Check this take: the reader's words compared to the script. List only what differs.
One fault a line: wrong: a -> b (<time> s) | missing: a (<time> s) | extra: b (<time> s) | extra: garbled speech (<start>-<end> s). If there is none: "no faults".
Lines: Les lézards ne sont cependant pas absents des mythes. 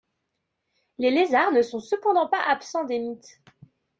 no faults